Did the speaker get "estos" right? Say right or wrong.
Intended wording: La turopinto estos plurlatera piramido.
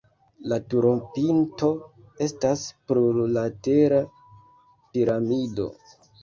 wrong